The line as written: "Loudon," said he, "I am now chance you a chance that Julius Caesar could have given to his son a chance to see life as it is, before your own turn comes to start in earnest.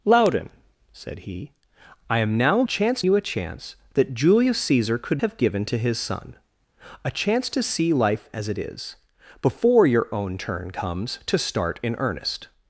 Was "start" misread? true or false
false